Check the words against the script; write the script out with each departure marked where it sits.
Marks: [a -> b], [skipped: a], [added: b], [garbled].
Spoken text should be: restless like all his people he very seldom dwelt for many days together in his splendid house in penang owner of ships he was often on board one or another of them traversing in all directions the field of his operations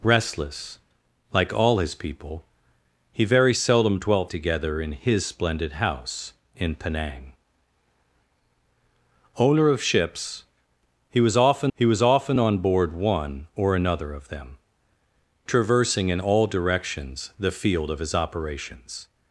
restless like all his people he very seldom dwelt [skipped: for many days] together in his splendid house in penang owner of ships he was often [added: he was often] on board one or another of them traversing in all directions the field of his operations